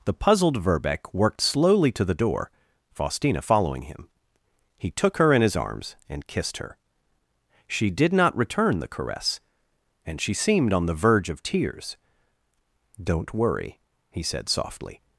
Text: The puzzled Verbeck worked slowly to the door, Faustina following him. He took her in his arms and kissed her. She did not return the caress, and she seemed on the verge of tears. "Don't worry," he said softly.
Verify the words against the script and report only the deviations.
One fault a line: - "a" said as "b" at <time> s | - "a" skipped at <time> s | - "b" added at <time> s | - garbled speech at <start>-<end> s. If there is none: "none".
none